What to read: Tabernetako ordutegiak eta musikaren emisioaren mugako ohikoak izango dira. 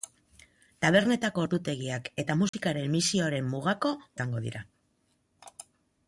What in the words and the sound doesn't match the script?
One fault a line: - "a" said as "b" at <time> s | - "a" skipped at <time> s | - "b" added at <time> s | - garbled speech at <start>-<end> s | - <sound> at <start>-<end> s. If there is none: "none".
- dropout at 2.5-2.5 s
- "ohikoak" skipped at 3.9 s